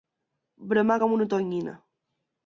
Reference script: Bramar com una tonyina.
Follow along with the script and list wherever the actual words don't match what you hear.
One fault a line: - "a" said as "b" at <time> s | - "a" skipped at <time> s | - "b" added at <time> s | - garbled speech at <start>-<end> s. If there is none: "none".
none